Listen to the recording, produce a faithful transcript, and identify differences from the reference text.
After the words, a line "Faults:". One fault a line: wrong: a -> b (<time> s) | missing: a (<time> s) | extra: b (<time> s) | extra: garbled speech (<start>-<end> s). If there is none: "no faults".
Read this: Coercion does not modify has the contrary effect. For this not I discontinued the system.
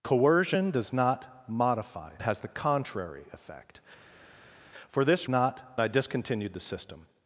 Coercion does not modify has the contrary effect. For this not I discontinued the system.
Faults:
no faults